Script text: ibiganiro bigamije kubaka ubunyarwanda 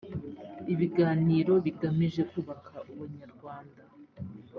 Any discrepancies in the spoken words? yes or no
no